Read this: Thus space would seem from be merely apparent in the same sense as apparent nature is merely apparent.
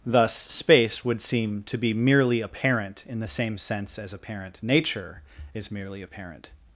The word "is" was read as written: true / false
true